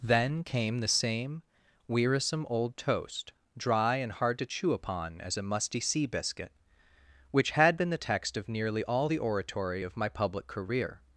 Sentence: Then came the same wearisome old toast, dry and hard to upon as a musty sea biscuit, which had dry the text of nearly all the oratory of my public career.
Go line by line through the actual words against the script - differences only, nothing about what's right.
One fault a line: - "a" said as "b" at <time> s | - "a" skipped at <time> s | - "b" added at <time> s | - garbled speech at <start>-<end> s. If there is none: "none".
- "chew" added at 4.5 s
- "dry" said as "been" at 7.8 s